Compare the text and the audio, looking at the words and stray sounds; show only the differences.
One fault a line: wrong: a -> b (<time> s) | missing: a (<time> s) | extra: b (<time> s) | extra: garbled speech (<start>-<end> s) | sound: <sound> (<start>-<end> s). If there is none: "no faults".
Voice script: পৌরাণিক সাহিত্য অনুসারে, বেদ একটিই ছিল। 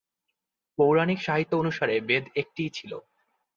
no faults